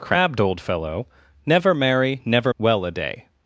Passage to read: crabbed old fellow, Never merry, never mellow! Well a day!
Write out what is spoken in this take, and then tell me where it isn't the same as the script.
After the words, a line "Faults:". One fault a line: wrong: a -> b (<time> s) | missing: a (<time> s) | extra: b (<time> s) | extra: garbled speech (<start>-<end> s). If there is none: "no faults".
crabbed old fellow, Never merry, never! Well a day!
Faults:
missing: mellow (2.5 s)